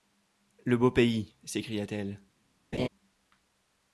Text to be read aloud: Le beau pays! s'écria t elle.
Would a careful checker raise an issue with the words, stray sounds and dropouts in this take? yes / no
yes